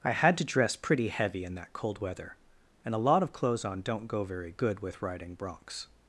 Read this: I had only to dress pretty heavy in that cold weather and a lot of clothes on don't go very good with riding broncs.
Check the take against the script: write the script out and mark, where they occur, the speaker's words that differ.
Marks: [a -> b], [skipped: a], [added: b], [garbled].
I had [skipped: only] to dress pretty heavy in that cold weather and a lot of clothes on don't go very good with riding broncs.